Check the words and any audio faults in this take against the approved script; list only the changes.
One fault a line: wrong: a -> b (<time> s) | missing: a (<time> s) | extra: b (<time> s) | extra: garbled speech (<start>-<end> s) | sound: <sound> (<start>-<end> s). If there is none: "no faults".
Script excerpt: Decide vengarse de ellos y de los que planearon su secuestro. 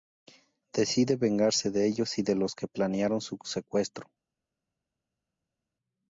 no faults